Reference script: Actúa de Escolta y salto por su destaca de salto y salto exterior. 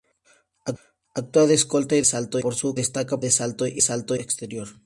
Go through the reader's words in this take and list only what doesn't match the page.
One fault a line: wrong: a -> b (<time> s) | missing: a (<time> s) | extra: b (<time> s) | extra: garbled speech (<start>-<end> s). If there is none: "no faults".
no faults